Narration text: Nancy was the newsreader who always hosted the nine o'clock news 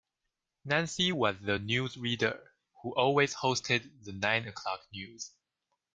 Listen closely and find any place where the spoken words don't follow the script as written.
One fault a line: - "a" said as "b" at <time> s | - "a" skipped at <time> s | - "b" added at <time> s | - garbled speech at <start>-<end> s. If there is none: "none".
none